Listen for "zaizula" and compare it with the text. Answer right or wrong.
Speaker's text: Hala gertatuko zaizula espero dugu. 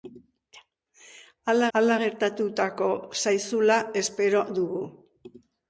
right